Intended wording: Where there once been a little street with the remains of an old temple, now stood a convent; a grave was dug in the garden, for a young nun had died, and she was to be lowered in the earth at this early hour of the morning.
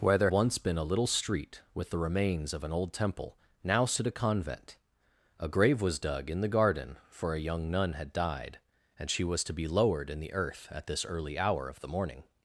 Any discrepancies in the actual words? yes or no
no